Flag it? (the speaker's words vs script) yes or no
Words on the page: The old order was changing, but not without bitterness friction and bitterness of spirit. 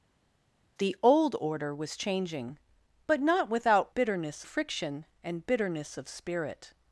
no